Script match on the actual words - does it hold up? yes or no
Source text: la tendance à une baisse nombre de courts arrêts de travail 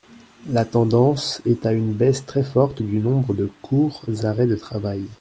no